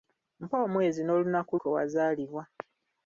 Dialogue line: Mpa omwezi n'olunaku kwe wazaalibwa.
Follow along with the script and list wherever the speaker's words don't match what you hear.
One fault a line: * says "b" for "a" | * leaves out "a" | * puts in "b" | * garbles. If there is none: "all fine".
all fine